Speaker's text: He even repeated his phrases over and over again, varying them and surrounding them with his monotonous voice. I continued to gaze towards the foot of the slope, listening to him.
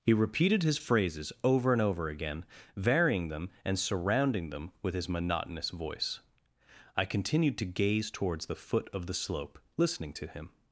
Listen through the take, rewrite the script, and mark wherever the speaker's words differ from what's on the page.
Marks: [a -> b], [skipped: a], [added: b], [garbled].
He [skipped: even] repeated his phrases over and over again, varying them and surrounding them with his monotonous voice. I continued to gaze towards the foot of the slope, listening to him.